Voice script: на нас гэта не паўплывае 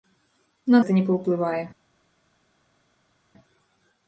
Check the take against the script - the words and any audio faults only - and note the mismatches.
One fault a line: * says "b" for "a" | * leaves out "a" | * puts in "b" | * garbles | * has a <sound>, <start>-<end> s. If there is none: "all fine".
* leaves out "нас"